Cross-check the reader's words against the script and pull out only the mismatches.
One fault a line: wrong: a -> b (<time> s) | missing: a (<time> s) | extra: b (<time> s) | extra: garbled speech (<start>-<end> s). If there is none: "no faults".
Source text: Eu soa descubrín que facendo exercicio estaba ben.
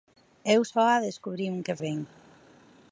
missing: facendo exercicio estaba (1.8 s)